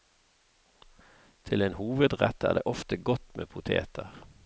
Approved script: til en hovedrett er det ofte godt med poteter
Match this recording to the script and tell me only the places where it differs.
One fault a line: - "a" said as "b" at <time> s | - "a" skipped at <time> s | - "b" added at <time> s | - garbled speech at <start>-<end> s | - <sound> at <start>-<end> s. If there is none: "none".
none